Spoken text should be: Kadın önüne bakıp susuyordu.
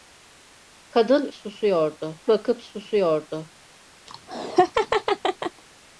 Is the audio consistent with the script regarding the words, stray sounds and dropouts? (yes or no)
no